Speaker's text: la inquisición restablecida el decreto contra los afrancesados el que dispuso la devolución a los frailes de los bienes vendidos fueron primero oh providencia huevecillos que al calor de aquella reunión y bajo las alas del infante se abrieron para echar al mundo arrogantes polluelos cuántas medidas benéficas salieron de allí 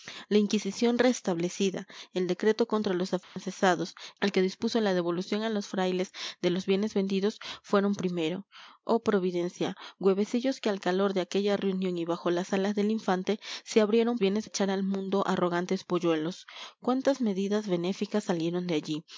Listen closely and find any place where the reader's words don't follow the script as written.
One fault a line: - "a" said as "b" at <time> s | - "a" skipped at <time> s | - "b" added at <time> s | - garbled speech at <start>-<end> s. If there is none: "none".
- "para" said as "bienes" at 14.2 s